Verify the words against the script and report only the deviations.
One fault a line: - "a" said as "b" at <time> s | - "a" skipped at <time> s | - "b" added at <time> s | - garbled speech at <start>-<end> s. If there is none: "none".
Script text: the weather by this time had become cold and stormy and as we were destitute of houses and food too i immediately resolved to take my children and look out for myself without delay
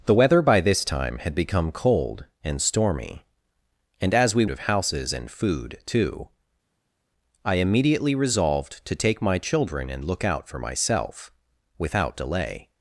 - "were destitute" skipped at 4.5 s